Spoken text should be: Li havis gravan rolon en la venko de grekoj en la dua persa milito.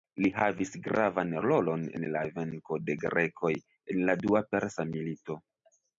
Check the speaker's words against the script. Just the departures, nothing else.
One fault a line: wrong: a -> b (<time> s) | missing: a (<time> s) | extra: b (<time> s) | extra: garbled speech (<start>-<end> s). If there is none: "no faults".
no faults